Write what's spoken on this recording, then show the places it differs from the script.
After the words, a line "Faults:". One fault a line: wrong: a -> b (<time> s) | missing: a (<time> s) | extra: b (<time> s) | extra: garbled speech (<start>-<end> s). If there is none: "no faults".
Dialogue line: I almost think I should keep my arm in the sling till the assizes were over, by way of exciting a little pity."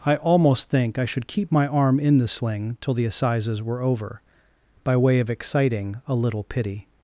I almost think I should keep my arm in the sling till the assizes were over, by way of exciting a little pity."
Faults:
no faults